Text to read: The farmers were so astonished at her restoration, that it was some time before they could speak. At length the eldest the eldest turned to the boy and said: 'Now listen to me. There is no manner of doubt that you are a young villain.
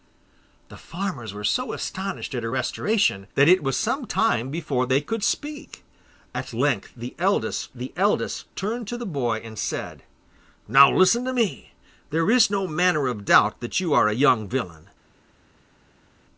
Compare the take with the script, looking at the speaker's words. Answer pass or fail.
pass